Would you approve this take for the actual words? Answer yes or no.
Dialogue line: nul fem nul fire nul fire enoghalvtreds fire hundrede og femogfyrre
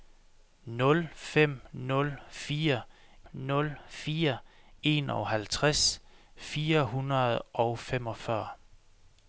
yes